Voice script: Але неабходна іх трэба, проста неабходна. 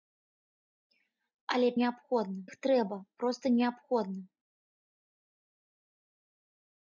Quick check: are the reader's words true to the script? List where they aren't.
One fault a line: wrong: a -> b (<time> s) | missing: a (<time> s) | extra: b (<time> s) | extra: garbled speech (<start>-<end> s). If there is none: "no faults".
no faults